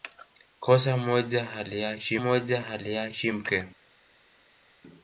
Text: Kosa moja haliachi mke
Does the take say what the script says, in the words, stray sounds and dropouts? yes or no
no